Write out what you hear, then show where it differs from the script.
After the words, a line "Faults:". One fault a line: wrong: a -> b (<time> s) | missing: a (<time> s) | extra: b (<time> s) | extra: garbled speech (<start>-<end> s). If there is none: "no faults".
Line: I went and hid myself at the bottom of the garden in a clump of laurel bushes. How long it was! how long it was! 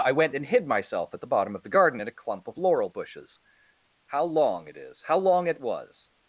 I went and hid myself at the bottom of the garden in a clump of laurel bushes. How long it is! how long it was!
Faults:
wrong: was -> is (4.8 s)